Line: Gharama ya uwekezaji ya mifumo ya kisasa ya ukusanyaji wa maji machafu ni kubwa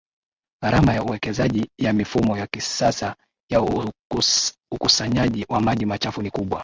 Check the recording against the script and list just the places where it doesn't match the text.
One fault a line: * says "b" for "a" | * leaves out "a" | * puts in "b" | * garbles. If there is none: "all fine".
all fine